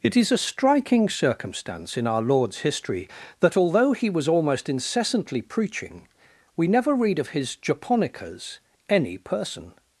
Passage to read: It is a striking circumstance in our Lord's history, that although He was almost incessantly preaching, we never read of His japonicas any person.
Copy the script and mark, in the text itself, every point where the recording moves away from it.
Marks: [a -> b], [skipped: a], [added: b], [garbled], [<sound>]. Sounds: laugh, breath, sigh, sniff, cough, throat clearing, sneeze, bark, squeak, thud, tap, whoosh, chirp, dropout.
It is a striking circumstance in our Lord's history, that although He was almost incessantly preaching, we never read of His japonicas any person.